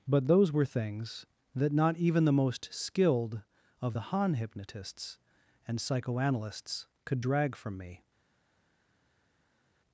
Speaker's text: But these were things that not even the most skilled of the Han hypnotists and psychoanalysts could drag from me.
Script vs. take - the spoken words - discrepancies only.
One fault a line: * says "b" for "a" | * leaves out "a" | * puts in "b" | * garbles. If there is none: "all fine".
* says "those" for "these"